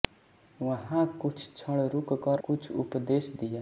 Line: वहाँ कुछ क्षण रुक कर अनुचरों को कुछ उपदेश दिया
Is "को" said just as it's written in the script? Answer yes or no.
no